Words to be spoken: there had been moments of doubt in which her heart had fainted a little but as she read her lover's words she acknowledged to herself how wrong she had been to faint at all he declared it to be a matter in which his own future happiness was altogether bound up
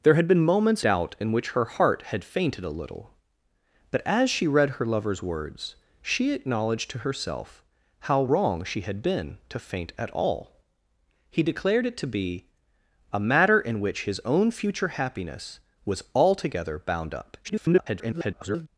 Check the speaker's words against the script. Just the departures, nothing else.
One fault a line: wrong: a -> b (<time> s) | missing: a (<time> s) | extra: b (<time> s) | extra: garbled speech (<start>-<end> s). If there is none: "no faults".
missing: of (0.8 s)
extra: garbled speech (17.4-18.7 s)